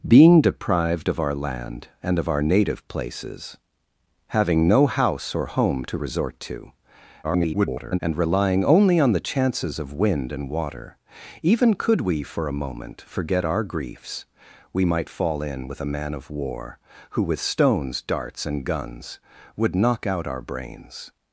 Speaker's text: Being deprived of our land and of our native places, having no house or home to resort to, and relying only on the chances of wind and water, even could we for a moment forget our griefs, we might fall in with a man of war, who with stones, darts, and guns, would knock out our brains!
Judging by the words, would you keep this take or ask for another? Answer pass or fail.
fail